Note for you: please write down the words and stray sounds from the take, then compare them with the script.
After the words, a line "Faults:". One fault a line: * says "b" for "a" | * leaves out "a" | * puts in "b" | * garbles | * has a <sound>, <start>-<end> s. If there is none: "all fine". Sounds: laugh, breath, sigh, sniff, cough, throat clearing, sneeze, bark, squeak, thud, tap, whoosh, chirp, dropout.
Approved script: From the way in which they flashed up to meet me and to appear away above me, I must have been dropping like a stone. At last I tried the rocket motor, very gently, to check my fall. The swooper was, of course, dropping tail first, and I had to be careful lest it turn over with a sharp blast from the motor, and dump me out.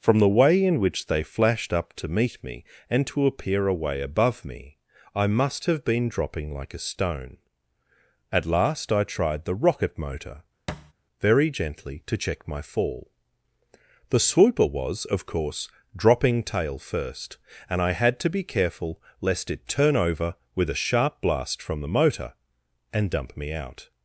From the way in which they flashed up to meet me and to appear away above me, I must have been dropping like a stone. At last I tried the rocket motor, very gently, to check my fall. The swooper was, of course, dropping tail first, and I had to be careful lest it turn over with a sharp blast from the motor, and dump me out.
Faults:
* has a thud, 10.7-10.9 s